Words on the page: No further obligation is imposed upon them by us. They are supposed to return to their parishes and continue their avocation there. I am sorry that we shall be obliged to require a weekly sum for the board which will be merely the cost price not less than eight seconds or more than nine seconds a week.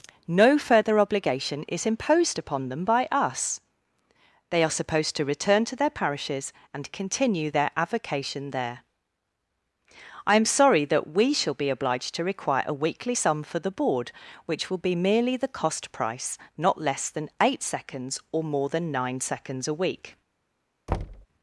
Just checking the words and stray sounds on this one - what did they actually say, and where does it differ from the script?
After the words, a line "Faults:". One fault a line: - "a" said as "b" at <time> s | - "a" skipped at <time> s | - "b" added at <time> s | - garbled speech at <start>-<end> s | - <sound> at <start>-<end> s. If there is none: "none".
No further obligation is imposed upon them by us. They are supposed to return to their parishes and continue their avocation there. I am sorry that we shall be obliged to require a weekly sum for the board which will be merely the cost price not less than eight seconds or more than nine seconds a week.
Faults:
- thud at 20.9-21.3 s